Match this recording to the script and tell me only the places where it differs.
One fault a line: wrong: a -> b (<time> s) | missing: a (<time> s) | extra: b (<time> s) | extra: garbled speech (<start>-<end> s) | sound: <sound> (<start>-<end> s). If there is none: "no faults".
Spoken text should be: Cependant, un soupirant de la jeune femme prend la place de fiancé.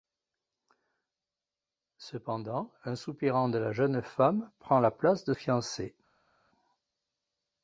no faults